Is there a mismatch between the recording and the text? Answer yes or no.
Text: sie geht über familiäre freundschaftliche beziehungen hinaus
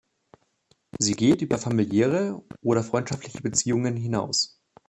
yes